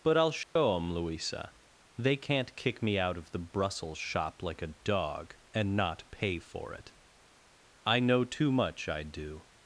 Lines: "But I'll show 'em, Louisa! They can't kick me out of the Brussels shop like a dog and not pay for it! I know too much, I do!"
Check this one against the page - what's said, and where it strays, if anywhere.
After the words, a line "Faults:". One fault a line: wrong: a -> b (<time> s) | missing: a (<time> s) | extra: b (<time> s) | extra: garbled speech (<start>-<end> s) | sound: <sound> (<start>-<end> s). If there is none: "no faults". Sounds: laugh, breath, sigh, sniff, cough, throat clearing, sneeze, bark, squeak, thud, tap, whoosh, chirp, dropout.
"But I'll show 'em, Louisa! They can't kick me out of the Brussels shop like a dog and not pay for it! I know too much, I do!"
Faults:
sound: dropout (0.4-0.6 s)